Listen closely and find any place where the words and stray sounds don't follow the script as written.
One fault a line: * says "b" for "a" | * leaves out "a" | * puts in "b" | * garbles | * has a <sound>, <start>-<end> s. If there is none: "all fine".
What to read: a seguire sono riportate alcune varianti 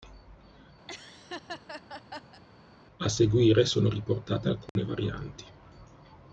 * has a laugh, 0.9-2.4 s
* has a dropout, 4.7-4.8 s